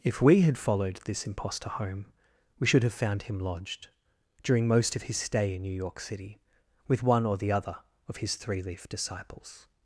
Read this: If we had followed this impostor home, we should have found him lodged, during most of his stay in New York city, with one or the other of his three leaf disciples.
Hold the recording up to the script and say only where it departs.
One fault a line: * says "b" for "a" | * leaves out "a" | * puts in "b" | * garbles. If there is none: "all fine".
all fine